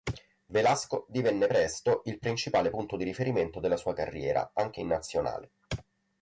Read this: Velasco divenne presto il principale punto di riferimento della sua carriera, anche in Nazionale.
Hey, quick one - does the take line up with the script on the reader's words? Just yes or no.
yes